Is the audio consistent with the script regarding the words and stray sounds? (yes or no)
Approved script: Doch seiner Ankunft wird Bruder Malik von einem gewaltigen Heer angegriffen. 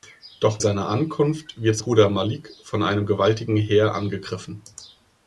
yes